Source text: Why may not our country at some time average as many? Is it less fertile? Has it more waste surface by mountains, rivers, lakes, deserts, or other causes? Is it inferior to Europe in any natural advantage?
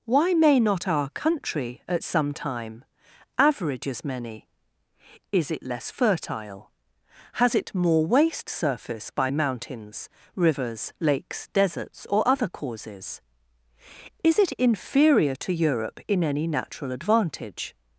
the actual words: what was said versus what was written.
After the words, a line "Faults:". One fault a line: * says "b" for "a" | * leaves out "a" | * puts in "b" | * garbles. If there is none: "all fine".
Why may not our country at some time average as many? Is it less fertile? Has it more waste surface by mountains, rivers, lakes, deserts, or other causes? Is it inferior to Europe in any natural advantage?
Faults:
all fine